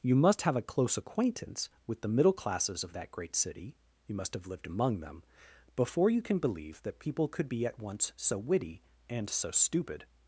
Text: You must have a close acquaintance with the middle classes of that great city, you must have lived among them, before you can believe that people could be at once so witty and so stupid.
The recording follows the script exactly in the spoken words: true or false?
true